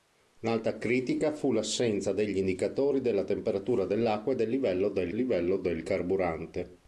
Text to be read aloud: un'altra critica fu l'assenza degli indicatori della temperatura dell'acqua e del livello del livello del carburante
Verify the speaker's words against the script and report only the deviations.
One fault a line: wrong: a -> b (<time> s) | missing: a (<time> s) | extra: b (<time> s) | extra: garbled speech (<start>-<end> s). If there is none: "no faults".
no faults